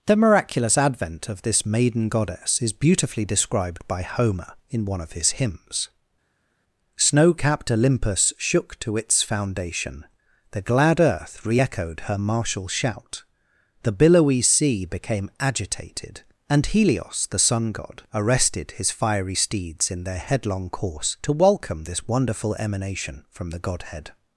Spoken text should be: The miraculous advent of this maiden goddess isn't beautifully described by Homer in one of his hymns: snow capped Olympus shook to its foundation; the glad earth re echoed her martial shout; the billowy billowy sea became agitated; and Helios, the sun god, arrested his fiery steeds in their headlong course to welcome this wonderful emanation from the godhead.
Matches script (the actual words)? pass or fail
fail